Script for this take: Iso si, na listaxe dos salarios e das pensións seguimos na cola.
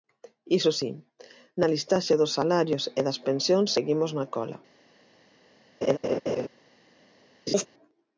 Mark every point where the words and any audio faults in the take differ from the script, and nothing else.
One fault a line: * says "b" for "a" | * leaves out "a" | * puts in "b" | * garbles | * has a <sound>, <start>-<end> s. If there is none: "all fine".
* has a laugh, 5.8-6.5 s
* has a laugh, 7.5-7.7 s